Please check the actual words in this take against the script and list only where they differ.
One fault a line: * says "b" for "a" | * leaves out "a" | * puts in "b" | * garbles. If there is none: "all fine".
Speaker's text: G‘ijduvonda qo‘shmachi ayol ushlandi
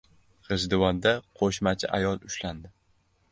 all fine